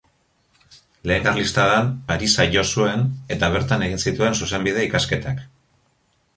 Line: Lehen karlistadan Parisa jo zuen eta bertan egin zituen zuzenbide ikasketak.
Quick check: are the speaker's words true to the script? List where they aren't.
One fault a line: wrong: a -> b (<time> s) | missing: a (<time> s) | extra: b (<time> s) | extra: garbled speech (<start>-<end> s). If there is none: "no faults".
no faults